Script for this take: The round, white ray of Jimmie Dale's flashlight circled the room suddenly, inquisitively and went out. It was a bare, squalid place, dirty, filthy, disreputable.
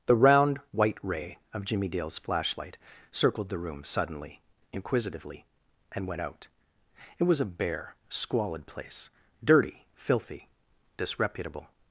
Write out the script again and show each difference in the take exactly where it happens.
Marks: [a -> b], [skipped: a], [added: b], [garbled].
The round, white ray of Jimmie Dale's flashlight circled the room suddenly, inquisitively and went out. It was a bare, squalid place, dirty, filthy, disreputable.